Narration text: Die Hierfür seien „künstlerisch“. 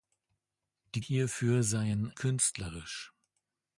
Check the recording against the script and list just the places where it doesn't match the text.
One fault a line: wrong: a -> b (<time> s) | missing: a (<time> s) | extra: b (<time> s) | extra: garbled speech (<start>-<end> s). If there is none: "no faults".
no faults